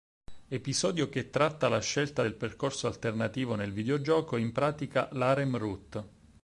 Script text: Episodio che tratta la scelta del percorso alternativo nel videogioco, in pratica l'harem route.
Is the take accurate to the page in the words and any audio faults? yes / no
yes